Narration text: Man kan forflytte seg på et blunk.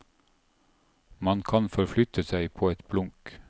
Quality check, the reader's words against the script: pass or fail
pass